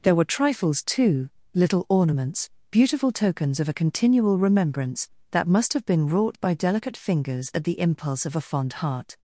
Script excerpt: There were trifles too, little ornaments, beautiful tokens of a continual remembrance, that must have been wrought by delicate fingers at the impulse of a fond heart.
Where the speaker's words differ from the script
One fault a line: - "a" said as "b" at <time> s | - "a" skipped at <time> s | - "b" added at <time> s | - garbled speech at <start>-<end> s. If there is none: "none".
none